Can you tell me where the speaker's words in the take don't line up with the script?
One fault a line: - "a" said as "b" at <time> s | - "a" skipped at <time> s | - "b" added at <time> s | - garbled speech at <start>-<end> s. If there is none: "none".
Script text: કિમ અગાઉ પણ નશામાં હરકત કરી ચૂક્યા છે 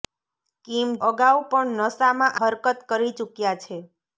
none